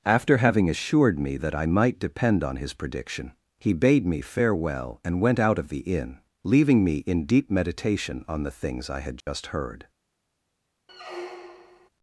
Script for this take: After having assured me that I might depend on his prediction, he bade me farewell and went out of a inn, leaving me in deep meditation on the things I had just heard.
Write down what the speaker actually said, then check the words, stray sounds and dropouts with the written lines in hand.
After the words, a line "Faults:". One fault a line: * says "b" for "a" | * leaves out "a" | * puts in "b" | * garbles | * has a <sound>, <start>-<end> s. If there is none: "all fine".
After having assured me that I might depend on his prediction, he bade me farewell and went out of the inn, leaving me in deep meditation on the things I had just heard.
Faults:
* says "the" for "a"
* has a dropout, 9.2-9.3 s
* has a squeak, 10.9-11.9 s